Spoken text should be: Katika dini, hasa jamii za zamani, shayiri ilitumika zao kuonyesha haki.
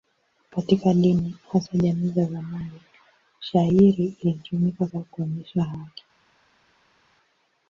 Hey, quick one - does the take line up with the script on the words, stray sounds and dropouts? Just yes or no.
yes